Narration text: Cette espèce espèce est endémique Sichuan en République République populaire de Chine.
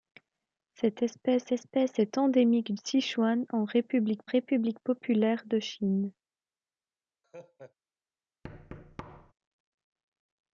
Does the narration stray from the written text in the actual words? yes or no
no